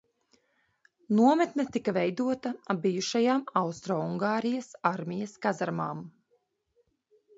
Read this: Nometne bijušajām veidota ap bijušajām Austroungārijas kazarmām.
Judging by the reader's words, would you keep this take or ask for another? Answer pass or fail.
fail